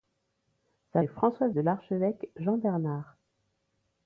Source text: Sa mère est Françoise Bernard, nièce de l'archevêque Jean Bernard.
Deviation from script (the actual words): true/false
true